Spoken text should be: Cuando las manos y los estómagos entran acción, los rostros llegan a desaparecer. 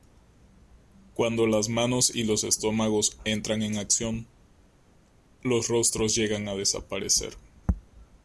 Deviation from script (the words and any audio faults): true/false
true